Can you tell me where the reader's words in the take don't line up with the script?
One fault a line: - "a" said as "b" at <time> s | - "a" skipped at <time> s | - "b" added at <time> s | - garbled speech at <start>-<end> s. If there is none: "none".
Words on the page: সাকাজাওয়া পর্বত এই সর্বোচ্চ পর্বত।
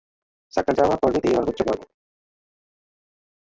none